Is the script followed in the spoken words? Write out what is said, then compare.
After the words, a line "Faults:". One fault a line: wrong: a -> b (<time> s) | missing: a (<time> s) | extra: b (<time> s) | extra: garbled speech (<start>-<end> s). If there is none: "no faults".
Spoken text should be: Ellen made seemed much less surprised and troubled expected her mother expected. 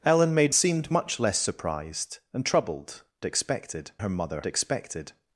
Ellen made seemed much less surprised and troubled expected her mother expected.
Faults:
no faults